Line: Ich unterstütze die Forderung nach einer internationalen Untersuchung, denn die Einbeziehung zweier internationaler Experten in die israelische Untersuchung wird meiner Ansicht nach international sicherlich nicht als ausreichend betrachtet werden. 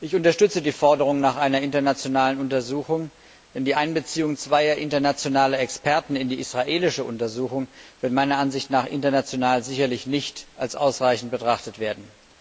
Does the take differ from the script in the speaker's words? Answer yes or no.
no